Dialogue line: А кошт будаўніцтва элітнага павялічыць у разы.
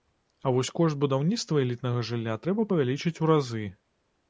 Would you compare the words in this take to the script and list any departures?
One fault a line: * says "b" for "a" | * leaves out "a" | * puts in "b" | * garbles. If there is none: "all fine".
* puts in "вось"
* puts in "жылля трэба"